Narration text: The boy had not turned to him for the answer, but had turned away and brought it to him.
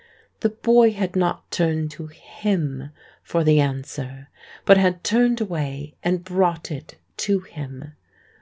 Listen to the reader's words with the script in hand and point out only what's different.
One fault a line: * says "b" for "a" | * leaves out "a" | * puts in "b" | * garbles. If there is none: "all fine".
all fine